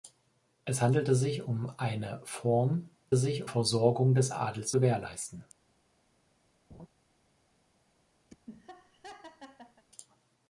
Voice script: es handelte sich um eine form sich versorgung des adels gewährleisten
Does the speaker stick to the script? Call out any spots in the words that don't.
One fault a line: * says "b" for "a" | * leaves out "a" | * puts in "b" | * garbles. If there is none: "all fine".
all fine